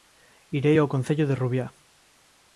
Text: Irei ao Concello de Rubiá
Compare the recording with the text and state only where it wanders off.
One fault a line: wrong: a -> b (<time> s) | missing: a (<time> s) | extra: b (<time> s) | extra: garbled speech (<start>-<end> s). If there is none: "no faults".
no faults